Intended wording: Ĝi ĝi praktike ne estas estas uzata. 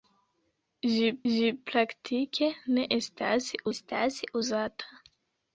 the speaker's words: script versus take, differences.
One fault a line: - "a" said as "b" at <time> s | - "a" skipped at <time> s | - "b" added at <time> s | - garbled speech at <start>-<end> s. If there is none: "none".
none